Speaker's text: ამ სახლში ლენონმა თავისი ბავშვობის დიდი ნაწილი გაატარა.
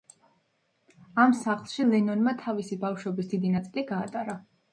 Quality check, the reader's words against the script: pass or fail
pass